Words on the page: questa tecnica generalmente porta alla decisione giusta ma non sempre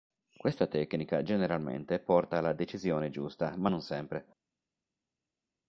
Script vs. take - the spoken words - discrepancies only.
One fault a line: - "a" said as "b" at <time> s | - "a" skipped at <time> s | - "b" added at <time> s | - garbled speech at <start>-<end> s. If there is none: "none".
none